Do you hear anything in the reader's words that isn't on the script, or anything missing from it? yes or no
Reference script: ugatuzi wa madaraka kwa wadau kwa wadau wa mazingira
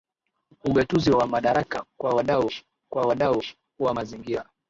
no